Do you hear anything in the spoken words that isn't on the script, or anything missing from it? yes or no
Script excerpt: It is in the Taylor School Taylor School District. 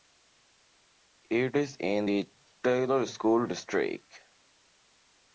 yes